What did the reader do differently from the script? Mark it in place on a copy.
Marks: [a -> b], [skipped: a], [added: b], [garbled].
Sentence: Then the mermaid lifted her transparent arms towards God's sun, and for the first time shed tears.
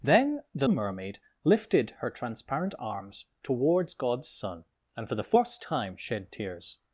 Then the mermaid lifted her transparent arms towards God's sun, and for the first time shed tears.